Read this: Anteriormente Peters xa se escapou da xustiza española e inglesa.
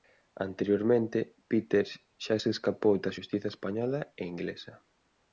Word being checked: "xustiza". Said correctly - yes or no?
yes